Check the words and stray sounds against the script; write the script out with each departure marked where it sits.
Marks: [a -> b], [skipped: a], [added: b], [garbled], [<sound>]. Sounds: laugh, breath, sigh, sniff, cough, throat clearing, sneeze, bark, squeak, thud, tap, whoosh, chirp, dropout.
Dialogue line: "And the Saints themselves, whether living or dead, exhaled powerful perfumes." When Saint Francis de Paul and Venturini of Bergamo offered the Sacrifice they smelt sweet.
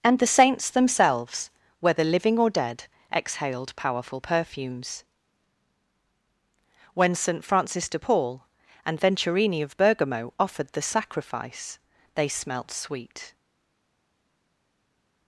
"And the Saints themselves, whether living or dead, exhaled powerful perfumes." When Saint Francis de Paul and Venturini of Bergamo offered the Sacrifice they smelt sweet.